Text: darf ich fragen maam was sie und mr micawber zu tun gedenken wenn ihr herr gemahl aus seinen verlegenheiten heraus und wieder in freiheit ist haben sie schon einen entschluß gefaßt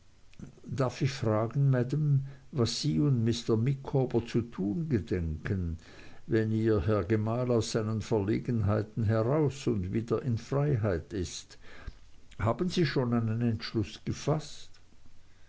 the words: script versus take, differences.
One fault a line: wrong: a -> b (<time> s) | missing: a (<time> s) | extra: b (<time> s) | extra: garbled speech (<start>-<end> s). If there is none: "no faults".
no faults